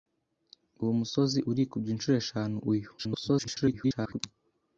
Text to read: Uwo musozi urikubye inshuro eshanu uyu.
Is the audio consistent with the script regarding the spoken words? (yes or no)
no